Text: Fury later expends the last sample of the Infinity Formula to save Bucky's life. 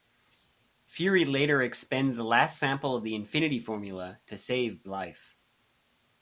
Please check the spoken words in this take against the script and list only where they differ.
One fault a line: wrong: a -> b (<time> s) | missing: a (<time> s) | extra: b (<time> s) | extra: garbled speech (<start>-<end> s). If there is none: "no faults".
missing: Bucky's (4.8 s)